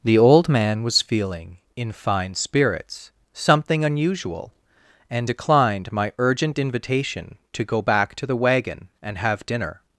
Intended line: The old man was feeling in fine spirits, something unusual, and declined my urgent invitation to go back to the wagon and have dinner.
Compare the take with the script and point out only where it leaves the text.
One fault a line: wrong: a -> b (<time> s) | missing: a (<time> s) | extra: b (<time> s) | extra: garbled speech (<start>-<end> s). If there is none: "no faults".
no faults